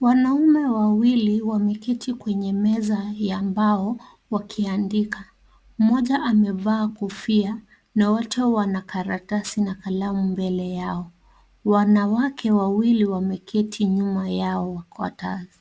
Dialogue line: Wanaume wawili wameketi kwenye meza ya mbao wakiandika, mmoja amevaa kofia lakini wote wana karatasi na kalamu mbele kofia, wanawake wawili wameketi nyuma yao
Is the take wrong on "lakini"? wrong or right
wrong